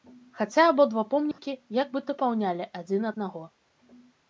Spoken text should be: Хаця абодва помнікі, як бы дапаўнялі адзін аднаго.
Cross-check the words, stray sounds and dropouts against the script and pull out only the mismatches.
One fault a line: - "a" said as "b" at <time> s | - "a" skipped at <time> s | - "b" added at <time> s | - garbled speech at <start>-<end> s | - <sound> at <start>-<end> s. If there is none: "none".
- dropout at 1.3-1.4 s